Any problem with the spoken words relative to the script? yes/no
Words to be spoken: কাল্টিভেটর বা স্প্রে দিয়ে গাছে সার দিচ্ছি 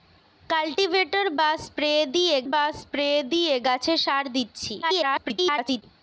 yes